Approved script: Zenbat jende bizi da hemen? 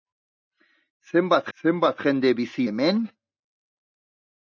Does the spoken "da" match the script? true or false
false